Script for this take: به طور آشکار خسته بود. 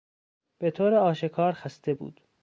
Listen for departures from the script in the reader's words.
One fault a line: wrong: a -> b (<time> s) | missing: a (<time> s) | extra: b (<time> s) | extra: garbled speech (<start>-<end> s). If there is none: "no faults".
no faults